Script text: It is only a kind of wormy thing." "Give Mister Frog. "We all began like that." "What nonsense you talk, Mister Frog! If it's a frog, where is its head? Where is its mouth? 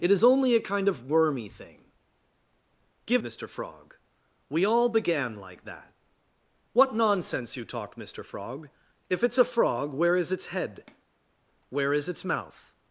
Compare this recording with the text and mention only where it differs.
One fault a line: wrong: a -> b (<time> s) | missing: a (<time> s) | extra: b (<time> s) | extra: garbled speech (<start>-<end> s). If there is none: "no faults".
no faults